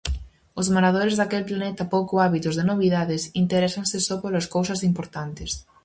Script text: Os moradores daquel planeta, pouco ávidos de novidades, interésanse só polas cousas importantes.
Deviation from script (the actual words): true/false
false